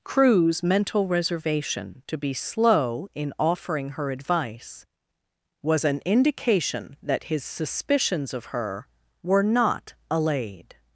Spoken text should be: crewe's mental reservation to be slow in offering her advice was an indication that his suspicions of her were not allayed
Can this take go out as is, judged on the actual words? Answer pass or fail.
pass